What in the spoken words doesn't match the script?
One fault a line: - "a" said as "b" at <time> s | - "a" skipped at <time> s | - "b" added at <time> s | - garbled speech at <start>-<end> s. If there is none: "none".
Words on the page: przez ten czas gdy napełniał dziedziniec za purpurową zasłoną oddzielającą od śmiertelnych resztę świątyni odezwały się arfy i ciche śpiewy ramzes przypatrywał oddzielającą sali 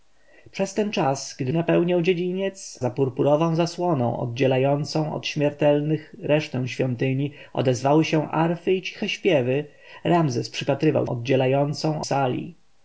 none